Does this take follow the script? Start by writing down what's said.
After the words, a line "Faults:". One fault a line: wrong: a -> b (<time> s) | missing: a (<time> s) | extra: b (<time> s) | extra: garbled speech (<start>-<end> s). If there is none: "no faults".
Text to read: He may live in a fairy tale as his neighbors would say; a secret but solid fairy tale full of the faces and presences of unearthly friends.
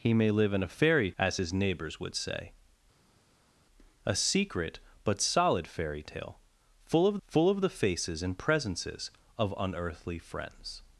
He may live in a fairy as his neighbors would say; a secret but solid fairy tale full of full of the faces and presences of unearthly friends.
Faults:
missing: tale (1.1 s)
extra: full of (7.3 s)